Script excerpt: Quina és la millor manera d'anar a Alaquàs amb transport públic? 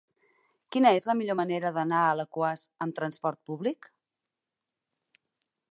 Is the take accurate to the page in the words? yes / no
yes